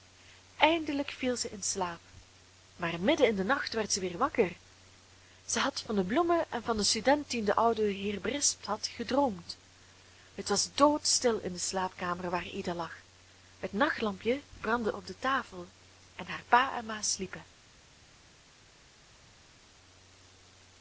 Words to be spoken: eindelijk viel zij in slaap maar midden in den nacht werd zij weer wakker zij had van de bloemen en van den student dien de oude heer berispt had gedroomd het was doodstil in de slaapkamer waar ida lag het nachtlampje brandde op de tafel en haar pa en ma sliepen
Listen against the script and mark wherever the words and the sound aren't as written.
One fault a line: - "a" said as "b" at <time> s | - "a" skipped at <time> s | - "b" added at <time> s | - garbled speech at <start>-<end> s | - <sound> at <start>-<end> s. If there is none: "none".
none